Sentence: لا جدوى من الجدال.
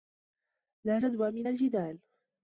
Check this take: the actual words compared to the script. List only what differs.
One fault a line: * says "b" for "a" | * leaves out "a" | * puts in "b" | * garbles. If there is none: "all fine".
all fine